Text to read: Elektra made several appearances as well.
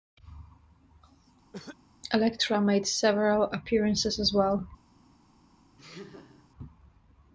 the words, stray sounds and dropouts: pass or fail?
fail